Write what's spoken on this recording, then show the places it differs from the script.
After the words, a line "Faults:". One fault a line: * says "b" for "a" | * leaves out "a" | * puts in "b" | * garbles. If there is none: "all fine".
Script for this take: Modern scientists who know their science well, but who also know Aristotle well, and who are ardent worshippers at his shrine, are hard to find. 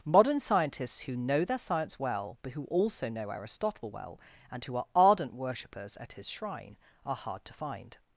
Modern scientists who know their science well, but who also know Aristotle well, and who are ardent worshippers at his shrine, are hard to find.
Faults:
all fine